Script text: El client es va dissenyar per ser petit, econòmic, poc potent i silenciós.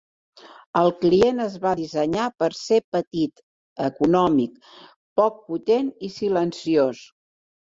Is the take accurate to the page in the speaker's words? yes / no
yes